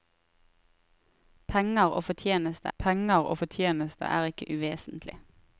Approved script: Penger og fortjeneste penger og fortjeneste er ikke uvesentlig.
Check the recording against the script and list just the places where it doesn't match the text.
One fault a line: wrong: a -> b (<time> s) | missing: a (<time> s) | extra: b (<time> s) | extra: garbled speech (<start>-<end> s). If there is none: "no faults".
no faults